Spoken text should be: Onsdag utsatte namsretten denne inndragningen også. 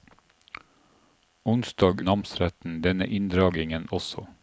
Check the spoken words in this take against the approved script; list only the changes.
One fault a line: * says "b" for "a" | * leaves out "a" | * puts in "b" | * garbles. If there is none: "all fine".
* leaves out "utsatte"